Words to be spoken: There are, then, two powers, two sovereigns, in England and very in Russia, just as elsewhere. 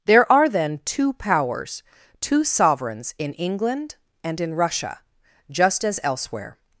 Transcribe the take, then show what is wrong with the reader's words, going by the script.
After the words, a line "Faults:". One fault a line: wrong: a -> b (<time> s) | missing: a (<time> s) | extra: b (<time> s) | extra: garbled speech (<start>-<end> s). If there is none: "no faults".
There are, then, two powers, two sovereigns, in England and in Russia, just as elsewhere.
Faults:
missing: very (4.4 s)